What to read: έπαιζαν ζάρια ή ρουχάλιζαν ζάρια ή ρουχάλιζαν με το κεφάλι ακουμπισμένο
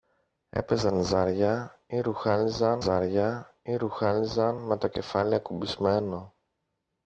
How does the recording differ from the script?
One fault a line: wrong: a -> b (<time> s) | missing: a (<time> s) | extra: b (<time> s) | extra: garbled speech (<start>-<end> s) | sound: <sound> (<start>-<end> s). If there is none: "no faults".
no faults